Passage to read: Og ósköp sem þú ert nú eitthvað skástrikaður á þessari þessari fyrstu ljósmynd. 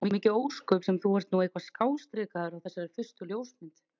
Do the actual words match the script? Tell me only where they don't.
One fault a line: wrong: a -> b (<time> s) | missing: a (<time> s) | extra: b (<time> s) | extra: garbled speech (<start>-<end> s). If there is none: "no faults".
extra: mikið (0.1 s)
missing: þessari (2.9 s)